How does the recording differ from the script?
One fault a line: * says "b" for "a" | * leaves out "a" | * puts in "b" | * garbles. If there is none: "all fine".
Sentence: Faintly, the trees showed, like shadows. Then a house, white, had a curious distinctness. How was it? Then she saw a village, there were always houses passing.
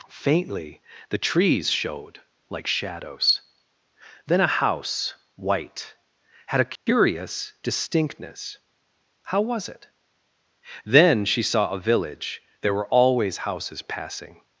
all fine